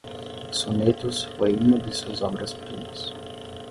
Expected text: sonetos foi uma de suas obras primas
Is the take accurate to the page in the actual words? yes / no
yes